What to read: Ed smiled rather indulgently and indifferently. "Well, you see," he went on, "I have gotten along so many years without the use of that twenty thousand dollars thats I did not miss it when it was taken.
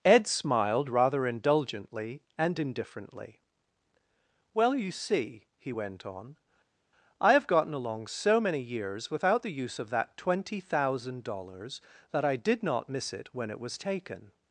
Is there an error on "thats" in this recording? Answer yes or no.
yes